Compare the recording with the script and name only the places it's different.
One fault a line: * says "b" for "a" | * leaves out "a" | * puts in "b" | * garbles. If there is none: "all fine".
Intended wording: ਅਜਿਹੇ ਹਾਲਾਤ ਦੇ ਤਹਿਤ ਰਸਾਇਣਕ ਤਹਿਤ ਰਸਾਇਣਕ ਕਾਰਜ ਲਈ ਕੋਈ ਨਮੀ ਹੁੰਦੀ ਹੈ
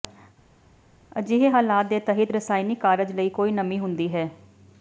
* leaves out "ਤਹਿਤ ਰਸਾਇਣਕ"